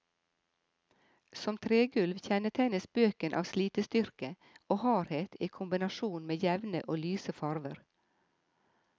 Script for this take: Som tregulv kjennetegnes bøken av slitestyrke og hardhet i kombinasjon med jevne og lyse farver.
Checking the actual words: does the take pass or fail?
pass